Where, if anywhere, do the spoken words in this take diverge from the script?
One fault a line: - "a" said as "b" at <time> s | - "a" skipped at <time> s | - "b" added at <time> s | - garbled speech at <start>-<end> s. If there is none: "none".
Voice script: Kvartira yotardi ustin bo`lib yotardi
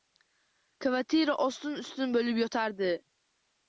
- "yotardi" said as "ostin" at 1.5 s